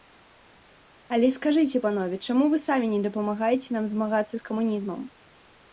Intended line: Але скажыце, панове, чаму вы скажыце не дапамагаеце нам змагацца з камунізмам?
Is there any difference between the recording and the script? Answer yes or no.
yes